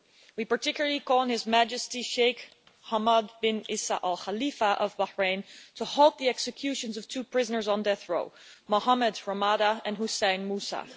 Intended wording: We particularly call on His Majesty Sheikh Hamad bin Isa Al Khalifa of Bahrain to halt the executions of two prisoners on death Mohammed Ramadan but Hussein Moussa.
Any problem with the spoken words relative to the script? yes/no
yes